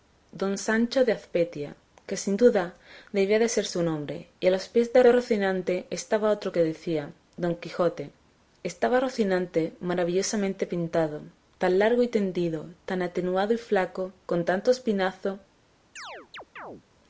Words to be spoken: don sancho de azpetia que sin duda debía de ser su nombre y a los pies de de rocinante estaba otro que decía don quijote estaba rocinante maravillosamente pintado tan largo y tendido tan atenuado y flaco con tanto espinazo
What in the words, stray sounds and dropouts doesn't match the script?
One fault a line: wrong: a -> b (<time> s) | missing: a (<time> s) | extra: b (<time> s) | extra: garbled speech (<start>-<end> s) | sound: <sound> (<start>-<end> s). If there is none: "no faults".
sound: chirp (16.0-16.8 s)